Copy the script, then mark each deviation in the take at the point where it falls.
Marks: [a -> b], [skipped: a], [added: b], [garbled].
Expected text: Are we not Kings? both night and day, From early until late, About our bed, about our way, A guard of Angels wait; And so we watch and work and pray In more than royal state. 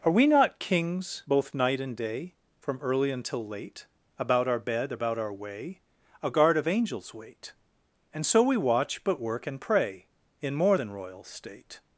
Are we not Kings? both night and day, From early until late, About our bed, about our way, A guard of Angels wait; And so we watch [and -> but] work and pray In more than royal state.